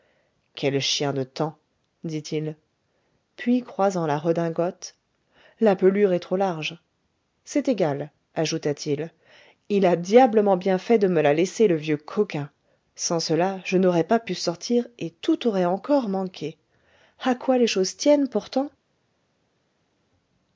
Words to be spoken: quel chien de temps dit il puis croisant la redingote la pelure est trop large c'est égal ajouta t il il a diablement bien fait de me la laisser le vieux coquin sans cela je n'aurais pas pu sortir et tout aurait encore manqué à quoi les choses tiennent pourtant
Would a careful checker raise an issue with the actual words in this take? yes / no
no